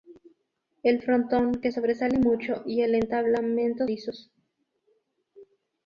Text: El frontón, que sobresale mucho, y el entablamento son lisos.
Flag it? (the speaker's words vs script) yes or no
yes